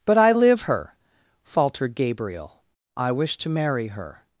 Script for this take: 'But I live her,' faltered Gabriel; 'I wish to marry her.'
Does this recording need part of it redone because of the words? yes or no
no